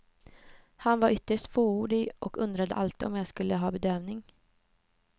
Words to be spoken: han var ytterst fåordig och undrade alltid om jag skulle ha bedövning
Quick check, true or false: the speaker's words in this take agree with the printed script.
true